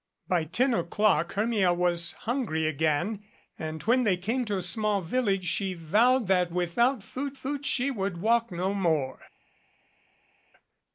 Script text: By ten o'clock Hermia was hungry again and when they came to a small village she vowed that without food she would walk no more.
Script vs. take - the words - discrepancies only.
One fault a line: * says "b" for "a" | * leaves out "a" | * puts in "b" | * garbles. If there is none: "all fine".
* puts in "food"